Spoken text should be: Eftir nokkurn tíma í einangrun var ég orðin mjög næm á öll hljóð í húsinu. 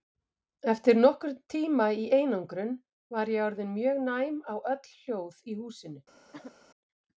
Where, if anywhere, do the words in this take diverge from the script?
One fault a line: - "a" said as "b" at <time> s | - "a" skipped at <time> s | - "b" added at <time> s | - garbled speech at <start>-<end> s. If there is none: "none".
none